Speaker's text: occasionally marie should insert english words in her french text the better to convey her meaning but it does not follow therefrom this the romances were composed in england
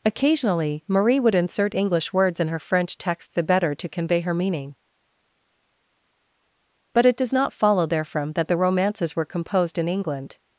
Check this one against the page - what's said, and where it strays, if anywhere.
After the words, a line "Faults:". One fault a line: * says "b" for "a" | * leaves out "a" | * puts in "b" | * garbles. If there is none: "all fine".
occasionally marie would insert english words in her french text the better to convey her meaning but it does not follow therefrom that the romances were composed in england
Faults:
* says "would" for "should"
* says "that" for "this"